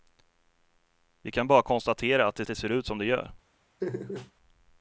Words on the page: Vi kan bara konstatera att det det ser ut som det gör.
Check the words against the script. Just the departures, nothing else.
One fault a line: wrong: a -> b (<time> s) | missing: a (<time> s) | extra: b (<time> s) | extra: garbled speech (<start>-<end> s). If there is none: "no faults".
no faults